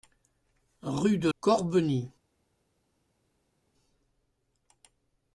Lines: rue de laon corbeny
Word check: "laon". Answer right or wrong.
wrong